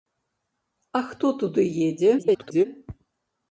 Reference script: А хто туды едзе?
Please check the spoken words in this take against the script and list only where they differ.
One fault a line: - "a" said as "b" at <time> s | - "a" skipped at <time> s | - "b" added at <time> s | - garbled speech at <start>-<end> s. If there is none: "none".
- garbled speech at 2.2-2.7 s